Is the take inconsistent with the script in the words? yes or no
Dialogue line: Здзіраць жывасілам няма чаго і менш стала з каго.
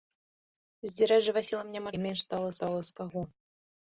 yes